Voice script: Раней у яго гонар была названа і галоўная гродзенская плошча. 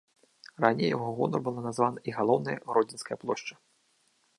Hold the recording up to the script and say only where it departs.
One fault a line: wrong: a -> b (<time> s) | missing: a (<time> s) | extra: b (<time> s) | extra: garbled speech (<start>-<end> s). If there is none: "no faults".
no faults